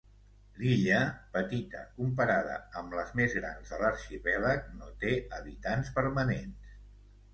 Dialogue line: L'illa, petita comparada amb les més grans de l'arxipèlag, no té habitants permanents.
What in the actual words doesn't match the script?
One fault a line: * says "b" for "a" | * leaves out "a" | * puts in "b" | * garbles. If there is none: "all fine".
all fine